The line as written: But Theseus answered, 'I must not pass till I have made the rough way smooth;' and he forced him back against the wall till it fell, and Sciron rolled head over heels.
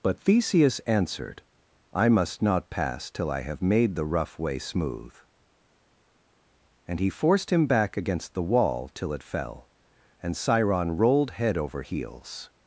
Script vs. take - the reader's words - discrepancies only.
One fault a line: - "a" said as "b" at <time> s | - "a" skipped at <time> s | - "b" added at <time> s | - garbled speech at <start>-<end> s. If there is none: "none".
none